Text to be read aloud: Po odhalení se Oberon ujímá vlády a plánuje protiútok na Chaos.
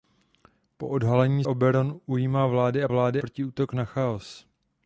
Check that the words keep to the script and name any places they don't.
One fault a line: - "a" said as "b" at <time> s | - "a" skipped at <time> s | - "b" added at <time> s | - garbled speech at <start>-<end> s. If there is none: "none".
- "se" skipped at 1.4 s
- "plánuje" said as "vlády" at 2.9 s